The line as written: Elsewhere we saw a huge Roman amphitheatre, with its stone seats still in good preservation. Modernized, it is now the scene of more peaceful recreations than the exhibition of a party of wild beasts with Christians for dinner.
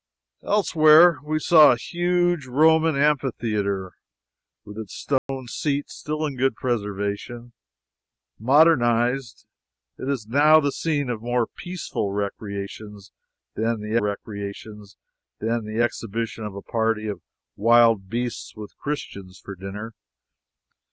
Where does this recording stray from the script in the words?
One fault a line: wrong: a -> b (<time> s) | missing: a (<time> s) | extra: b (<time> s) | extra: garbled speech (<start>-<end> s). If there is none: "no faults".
extra: recreations than the (14.0 s)